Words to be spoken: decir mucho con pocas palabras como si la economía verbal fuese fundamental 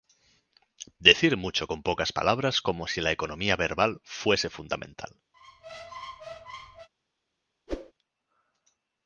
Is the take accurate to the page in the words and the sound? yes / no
no